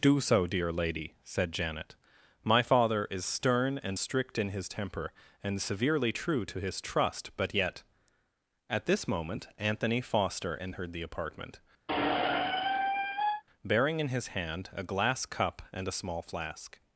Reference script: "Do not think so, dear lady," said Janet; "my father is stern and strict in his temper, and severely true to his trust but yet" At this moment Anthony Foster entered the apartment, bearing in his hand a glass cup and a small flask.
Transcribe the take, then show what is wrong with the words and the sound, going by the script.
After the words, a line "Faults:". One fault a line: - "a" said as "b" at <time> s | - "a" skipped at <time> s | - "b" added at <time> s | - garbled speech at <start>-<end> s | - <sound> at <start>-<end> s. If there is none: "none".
"Do so, dear lady," said Janet; "my father is stern and strict in his temper, and severely true to his trust but yet" At this moment Anthony Foster entered the apartment, bearing in his hand a glass cup and a small flask.
Faults:
- "not think" skipped at 0.2 s
- squeak at 11.9-13.4 s